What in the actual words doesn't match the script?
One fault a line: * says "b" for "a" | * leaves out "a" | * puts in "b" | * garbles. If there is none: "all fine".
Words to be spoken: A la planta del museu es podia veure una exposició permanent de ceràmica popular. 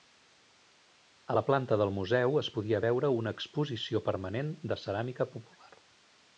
all fine